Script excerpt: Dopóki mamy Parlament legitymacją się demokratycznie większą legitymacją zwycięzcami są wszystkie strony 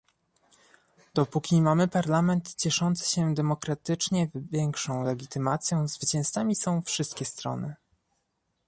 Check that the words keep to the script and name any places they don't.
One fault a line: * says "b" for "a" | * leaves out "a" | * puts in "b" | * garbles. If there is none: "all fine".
* says "cieszący" for "legitymacją"